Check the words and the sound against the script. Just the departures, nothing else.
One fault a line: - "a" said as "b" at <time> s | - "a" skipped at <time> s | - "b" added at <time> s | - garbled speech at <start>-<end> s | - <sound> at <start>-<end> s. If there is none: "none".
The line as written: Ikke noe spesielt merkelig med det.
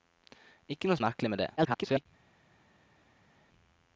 - "spesielt" skipped at 1.0 s
- garbled speech at 1.6-2.1 s